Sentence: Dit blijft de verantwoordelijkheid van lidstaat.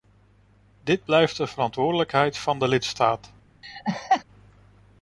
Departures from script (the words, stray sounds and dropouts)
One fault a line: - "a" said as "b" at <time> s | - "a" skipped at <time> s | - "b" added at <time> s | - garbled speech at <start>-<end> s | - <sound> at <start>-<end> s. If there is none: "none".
- "de" added at 2.6 s
- laugh at 3.6-4.2 s